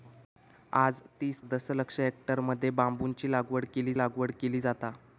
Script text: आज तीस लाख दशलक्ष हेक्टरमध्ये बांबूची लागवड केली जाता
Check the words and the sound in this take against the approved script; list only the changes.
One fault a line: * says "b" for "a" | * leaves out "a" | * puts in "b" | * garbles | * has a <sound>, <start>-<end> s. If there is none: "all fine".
* leaves out "लाख"
* puts in "लागवड केली"